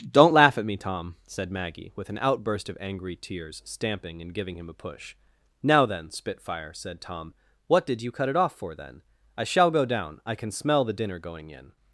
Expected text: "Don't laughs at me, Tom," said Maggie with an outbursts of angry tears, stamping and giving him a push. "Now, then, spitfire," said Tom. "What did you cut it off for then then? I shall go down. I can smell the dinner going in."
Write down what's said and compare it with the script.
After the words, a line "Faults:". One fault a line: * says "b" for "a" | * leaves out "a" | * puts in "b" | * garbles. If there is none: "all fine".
"Don't laugh at me, Tom," said Maggie with an outburst of angry tears, stamping and giving him a push. "Now, then, spitfire," said Tom. "What did you cut it off for then? I shall go down. I can smell the dinner going in."
Faults:
* says "laugh" for "laughs"
* says "outburst" for "outbursts"
* leaves out "then"